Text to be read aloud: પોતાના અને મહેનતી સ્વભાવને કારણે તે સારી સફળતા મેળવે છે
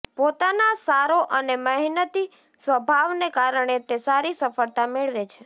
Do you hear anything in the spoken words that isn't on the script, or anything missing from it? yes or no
yes